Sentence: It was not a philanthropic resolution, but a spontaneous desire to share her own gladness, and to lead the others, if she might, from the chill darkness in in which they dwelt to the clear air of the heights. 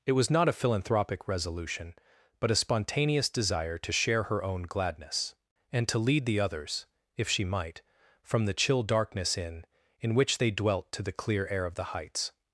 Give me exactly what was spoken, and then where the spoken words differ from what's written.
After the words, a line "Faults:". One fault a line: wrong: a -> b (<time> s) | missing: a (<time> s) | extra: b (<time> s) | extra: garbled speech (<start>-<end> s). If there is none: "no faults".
It was not a philanthropic resolution, but a spontaneous desire to share her own gladness, and to lead the others, if she might, from the chill darkness in in which they dwelt to the clear air of the heights.
Faults:
no faults